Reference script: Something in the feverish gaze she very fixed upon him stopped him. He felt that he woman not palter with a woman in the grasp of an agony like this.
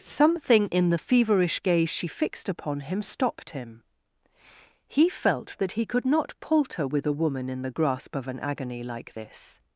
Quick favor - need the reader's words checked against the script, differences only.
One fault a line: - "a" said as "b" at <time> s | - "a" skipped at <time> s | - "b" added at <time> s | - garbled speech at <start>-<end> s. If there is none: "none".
- "very" skipped at 2.1 s
- "woman" said as "could" at 5.8 s